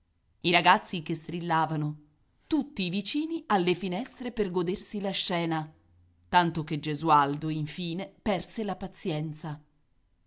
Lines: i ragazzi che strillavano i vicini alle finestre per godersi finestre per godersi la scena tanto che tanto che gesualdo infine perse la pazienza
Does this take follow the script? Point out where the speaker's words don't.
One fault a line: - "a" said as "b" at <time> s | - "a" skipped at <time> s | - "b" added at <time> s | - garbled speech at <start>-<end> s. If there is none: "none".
- "tutti" added at 2.5 s
- "finestre per godersi" skipped at 5.0 s
- "tanto che" skipped at 6.8 s